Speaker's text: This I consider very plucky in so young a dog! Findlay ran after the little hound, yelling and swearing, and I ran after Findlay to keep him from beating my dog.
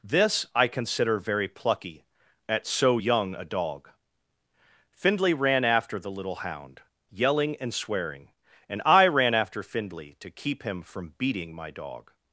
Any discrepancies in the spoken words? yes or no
yes